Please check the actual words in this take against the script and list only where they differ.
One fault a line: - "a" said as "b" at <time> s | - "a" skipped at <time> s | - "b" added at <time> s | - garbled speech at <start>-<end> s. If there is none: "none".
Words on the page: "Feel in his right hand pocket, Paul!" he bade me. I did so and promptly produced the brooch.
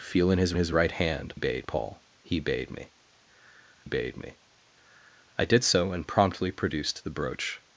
- "his" added at 0.6 s
- "pocket" said as "bade" at 1.3 s
- "bade me" added at 3.8 s